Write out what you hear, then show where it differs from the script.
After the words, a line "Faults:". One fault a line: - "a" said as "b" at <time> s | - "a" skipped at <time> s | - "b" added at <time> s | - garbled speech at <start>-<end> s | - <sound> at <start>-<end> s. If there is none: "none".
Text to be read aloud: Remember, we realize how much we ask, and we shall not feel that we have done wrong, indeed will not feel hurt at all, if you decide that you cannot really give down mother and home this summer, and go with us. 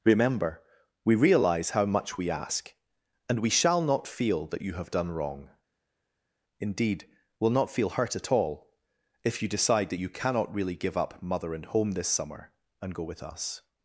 Remember, we realize how much we ask, and we shall not feel that you have done wrong, indeed will not feel hurt at all, if you decide that you cannot really give up mother and home this summer, and go with us.
Faults:
- "we" said as "you" at 4.6 s
- "down" said as "up" at 11.0 s